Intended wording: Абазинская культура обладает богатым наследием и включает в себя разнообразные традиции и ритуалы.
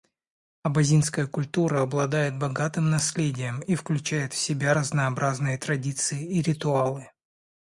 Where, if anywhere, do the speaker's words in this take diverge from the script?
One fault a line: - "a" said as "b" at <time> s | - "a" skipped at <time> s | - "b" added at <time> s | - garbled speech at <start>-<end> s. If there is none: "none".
none